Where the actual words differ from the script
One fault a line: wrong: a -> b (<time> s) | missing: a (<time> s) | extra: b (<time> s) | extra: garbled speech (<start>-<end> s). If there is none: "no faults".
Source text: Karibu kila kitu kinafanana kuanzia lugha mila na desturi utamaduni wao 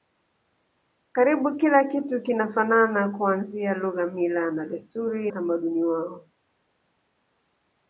no faults